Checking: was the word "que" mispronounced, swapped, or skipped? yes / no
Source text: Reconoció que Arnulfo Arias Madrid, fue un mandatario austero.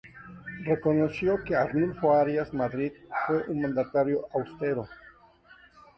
no